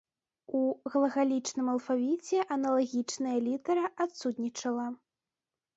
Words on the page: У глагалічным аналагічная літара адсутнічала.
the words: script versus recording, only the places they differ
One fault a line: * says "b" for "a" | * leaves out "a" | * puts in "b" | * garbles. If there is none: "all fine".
* puts in "алфавіце"